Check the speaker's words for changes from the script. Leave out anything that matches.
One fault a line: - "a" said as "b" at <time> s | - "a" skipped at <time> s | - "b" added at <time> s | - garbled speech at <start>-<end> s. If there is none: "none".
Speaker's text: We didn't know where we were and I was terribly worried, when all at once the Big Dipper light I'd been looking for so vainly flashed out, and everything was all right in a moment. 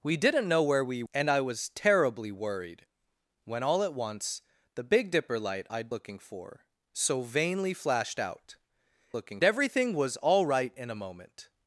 - "were" skipped at 1.0 s
- "been" skipped at 5.9 s
- "and" said as "looking" at 9.1 s